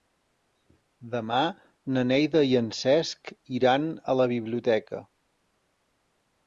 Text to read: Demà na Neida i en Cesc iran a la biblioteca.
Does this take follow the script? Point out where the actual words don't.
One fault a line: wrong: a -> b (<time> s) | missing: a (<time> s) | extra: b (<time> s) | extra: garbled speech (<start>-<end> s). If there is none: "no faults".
no faults